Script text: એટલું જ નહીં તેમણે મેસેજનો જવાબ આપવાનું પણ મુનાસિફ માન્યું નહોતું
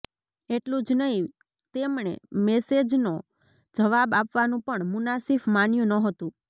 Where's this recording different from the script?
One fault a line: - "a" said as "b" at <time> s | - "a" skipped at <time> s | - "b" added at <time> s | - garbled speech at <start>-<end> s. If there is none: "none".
none